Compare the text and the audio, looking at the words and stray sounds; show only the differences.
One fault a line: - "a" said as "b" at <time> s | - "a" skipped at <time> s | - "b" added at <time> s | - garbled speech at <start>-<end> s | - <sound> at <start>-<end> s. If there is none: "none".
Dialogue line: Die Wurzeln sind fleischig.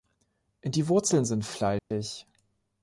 - dropout at 1.8-1.9 s